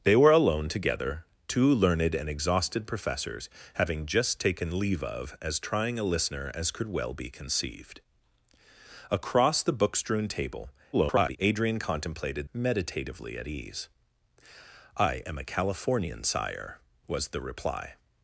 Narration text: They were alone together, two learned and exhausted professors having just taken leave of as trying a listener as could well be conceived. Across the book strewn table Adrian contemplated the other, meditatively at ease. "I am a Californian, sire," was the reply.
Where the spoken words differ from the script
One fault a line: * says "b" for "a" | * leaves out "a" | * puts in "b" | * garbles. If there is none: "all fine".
* garbles
* leaves out "the other"